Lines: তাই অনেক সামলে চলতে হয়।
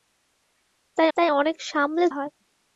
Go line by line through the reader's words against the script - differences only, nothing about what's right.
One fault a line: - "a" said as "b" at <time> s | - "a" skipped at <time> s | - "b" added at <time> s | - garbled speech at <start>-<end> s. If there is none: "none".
- "তাই" added at 1.2 s
- "চলতে" skipped at 2.1 s